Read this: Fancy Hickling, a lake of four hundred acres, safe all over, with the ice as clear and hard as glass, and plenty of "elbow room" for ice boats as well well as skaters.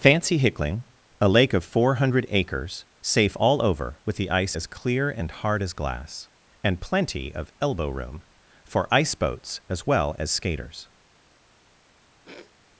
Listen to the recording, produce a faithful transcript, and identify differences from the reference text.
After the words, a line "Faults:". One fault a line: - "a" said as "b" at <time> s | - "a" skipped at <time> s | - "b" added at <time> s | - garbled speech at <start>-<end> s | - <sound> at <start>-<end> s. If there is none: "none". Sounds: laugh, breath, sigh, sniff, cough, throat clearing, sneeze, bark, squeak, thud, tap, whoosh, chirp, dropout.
Fancy Hickling, a lake of four hundred acres, safe all over, with the ice as clear and hard as glass, and plenty of "elbow room" for ice boats as well as skaters.
Faults:
- "well" skipped at 10.1 s
- sniff at 12.2-12.5 s